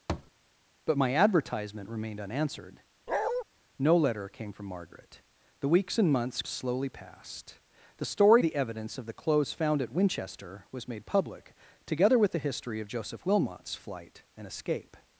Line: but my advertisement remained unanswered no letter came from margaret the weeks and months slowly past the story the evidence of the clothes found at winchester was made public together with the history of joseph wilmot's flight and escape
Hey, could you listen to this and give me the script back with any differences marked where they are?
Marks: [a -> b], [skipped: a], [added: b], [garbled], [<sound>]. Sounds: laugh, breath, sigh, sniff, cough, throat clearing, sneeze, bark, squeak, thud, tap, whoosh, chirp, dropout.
[thud] but my advertisement remained unanswered [bark] no letter came from margaret the weeks and months slowly past the story the evidence of the clothes found at winchester was made public together with the history of joseph wilmot's flight and escape